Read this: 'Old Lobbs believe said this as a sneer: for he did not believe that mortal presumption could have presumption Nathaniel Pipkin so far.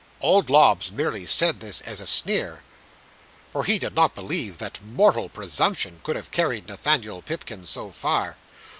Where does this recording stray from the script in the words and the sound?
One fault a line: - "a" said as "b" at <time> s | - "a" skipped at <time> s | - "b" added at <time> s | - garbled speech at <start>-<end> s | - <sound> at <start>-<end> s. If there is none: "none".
- "believe" said as "merely" at 0.9 s
- "presumption" said as "carried" at 6.3 s